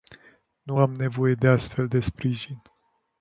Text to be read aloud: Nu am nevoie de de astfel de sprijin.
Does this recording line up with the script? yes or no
no